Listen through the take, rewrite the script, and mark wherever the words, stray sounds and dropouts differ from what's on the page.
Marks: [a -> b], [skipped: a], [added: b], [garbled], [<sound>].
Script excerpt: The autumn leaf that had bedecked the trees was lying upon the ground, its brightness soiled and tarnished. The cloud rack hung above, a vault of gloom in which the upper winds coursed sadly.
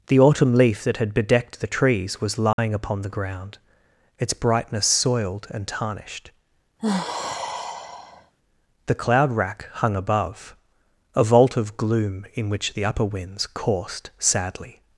The autumn leaf that had bedecked the trees was lying [dropout] upon the ground, its brightness soiled and tarnished. [sigh] The cloud rack hung above, a vault of gloom in which the upper winds coursed sadly.